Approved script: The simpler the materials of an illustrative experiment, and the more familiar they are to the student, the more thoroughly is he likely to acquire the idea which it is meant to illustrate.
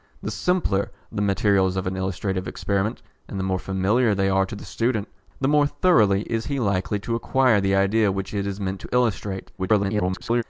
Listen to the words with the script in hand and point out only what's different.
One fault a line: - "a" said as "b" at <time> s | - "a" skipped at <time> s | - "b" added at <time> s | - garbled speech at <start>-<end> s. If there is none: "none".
- garbled speech at 9.6-10.4 s